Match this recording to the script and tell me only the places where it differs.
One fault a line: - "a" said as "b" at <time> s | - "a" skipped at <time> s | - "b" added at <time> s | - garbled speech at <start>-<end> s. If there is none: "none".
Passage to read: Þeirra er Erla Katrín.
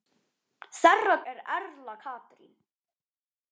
none